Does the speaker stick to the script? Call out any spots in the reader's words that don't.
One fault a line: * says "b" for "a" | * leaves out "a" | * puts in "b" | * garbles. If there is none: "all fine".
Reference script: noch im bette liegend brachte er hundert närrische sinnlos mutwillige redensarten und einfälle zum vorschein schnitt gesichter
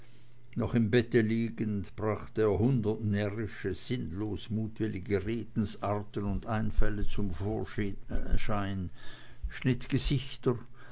all fine